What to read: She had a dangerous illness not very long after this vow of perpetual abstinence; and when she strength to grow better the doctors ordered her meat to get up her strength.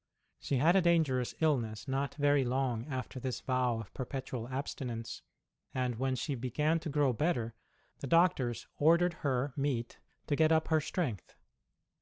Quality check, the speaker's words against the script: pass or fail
fail